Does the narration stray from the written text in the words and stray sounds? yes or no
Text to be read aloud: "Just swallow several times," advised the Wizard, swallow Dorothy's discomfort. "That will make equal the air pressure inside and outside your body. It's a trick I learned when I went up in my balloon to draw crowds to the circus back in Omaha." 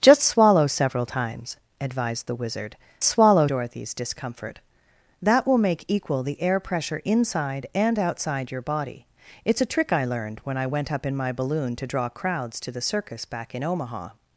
no